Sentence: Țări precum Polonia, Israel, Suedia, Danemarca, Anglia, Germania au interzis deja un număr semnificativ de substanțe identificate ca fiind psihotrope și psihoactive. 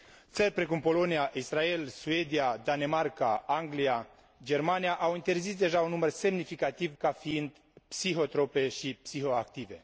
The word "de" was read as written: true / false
false